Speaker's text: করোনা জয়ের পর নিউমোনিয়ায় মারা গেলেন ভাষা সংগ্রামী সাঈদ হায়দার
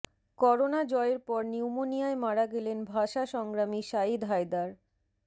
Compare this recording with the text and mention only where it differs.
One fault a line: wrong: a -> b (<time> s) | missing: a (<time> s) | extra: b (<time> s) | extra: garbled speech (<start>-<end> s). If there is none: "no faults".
no faults